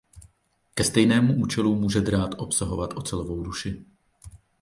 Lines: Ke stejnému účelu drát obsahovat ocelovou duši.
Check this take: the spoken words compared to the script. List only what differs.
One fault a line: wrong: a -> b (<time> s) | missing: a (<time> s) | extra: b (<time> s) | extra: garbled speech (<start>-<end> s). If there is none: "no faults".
extra: může (1.8 s)